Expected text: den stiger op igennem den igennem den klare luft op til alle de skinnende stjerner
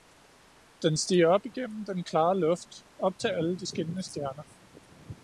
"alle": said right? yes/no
yes